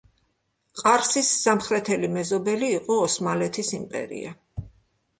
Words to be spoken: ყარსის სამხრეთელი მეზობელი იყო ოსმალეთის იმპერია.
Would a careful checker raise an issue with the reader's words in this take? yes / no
no